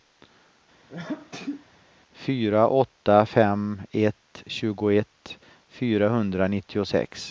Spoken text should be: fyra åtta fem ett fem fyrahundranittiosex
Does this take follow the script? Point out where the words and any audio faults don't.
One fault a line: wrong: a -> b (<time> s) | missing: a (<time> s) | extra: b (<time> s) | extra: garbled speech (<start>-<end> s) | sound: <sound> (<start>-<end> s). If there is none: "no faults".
sound: sneeze (0.9-1.7 s)
wrong: fem -> tjugoett (4.5 s)